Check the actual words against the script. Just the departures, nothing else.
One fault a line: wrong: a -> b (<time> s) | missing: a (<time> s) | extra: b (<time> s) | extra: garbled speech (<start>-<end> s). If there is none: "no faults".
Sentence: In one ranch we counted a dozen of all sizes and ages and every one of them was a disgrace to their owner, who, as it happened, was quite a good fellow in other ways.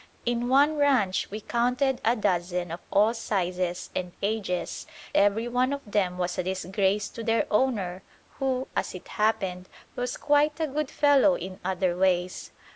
missing: and (4.9 s)